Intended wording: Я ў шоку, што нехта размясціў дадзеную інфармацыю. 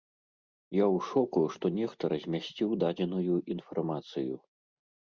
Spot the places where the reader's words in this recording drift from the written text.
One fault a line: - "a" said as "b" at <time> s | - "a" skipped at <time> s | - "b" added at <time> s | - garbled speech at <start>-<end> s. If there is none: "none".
none